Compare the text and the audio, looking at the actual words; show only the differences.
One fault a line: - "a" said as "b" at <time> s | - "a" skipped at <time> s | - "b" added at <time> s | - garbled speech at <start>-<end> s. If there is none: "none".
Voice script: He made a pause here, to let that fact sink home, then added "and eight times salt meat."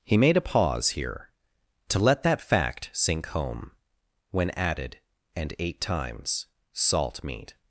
- "then" said as "when" at 4.3 s